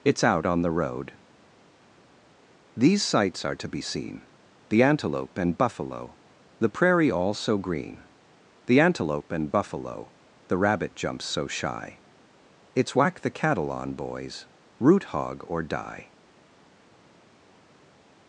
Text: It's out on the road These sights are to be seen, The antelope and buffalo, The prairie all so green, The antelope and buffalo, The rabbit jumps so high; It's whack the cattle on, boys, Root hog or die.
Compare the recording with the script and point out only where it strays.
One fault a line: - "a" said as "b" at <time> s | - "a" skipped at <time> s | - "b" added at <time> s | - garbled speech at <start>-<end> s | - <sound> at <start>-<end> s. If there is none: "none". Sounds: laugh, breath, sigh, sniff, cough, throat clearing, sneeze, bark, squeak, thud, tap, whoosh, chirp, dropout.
- "high" said as "shy" at 11.4 s